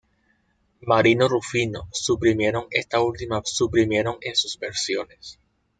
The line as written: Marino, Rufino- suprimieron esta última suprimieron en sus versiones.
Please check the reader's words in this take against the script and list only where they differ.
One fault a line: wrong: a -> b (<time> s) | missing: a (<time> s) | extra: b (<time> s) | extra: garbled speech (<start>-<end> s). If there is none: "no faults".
no faults